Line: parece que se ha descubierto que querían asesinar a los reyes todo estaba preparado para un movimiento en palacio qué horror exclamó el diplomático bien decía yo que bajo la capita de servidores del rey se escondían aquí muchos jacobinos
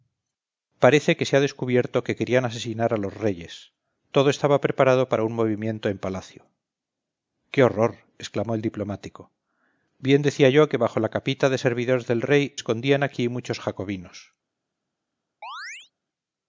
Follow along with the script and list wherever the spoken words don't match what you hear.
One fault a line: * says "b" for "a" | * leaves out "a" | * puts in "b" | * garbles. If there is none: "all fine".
* leaves out "se"